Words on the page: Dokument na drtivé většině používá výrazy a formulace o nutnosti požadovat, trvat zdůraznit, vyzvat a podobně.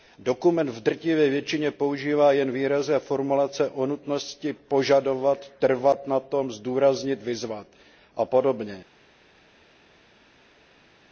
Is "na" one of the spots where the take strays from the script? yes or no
yes